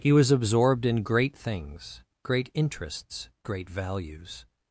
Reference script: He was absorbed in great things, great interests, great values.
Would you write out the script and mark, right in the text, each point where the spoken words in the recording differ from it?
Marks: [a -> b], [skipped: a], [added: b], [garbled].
He was absorbed in great things, great interests, great values.